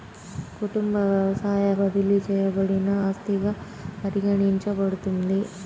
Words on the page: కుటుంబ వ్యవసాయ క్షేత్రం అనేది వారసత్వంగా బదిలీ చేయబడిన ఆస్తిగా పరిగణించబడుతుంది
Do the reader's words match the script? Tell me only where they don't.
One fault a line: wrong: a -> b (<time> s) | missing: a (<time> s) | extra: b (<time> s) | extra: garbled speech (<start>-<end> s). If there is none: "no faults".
missing: క్షేత్రం అనేది వారసత్వంగా (1.6 s)